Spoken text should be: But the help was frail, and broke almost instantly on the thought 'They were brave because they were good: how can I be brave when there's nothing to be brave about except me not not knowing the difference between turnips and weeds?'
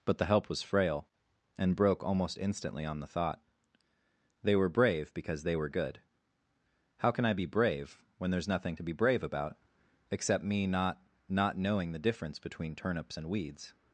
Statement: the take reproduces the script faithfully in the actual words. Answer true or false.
true